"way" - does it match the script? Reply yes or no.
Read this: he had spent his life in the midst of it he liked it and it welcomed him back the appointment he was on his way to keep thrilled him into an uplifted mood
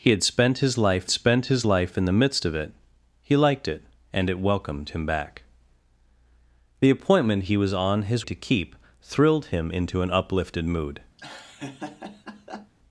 no